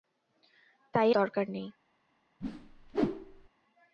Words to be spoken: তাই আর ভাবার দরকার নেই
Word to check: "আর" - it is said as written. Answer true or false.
false